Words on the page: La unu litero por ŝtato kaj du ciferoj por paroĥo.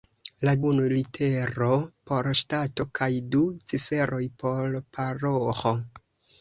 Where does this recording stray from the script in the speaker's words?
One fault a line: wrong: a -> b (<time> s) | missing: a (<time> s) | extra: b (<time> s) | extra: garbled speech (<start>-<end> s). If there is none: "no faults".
no faults